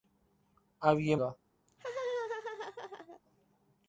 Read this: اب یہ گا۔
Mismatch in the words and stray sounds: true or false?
true